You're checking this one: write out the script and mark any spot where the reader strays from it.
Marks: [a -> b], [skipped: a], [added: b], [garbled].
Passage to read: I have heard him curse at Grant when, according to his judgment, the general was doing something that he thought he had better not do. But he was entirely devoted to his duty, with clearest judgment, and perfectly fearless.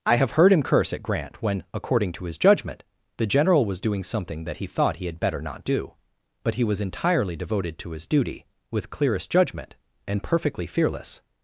I have heard him curse at Grant when, according to his judgment, the general was doing something that he thought he had better not do. But he was entirely devoted to his duty, with clearest judgment, and perfectly fearless.